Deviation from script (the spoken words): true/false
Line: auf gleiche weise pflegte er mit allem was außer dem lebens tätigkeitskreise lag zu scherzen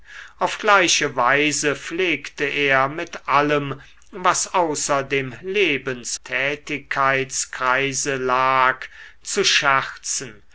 false